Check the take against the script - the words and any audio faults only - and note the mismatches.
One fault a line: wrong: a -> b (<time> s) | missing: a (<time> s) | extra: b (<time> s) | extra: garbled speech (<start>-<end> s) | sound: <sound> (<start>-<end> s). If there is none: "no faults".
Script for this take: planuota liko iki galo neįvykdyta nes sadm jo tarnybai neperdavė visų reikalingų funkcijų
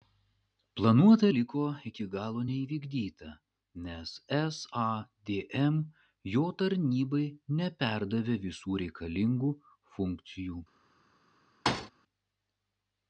sound: thud (11.7-11.9 s)